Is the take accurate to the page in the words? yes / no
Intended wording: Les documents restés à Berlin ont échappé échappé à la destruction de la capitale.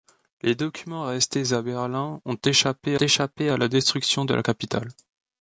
yes